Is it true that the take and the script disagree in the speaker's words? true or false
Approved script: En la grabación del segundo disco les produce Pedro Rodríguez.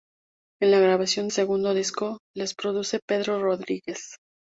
true